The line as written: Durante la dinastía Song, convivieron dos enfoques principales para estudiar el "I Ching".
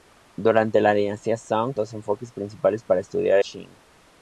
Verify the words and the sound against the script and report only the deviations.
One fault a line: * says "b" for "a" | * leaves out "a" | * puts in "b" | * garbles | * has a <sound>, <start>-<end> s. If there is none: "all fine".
* leaves out "convivieron"
* leaves out "el I"